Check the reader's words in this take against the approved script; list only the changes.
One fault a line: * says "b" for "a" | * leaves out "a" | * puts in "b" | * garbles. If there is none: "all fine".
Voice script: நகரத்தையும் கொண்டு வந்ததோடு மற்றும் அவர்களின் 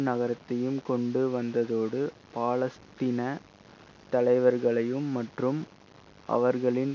* puts in "பாலஸ்தீன தலைவர்களையும்"